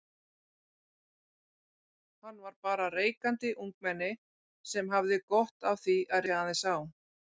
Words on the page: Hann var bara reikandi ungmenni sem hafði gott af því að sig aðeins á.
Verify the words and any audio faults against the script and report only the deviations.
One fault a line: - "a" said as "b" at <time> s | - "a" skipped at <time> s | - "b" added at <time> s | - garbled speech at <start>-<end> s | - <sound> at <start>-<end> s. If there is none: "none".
none